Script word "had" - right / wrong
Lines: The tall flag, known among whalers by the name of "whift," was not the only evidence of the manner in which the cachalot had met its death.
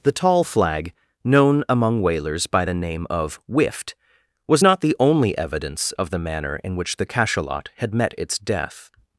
right